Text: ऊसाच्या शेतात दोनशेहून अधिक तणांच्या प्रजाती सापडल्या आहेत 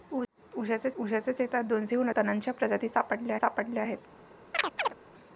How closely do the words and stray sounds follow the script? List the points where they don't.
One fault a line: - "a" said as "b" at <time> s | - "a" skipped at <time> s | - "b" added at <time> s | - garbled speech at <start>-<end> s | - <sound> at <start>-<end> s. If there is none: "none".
- "ऊसाच्या" added at 1.0 s
- "अधिक" skipped at 2.1 s
- "सापडल्या" added at 3.3 s
- chirp at 4.5-4.9 s